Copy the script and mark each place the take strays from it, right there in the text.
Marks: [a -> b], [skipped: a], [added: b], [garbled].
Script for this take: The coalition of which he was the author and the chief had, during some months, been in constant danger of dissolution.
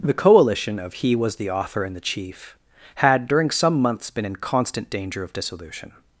The coalition of [skipped: which] he was the author and the chief had, during some months, been in constant danger of dissolution.